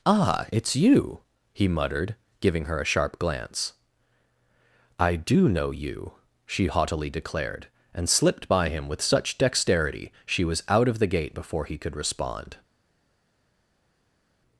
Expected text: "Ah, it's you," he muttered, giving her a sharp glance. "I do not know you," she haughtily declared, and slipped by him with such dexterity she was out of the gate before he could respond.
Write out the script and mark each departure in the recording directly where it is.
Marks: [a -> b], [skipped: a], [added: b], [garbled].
"Ah, it's you," he muttered, giving her a sharp glance. "I do [skipped: not] know you," she haughtily declared, and slipped by him with such dexterity she was out of the gate before he could respond.